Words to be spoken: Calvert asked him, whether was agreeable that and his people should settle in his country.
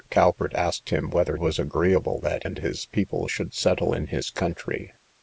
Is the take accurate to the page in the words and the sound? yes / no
yes